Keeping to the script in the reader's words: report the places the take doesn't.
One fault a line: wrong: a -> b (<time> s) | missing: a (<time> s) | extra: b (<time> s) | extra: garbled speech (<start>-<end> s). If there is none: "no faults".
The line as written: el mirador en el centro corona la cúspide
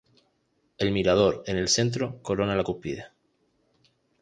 no faults